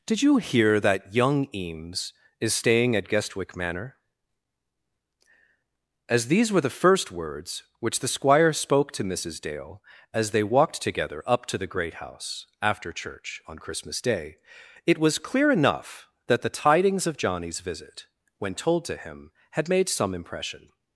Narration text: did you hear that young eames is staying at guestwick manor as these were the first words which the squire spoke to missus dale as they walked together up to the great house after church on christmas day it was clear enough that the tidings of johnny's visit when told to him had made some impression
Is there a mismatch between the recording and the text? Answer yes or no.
no